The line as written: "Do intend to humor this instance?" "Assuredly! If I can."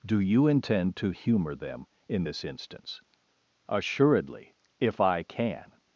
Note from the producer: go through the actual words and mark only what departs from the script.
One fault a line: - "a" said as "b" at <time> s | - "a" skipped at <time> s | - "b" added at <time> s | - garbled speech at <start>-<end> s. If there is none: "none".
- "you" added at 0.2 s
- "them in" added at 1.5 s